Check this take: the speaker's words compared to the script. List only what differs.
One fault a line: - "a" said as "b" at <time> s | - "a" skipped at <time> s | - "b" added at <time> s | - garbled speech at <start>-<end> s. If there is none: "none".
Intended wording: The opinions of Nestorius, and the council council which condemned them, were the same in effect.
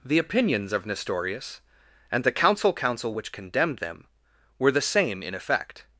none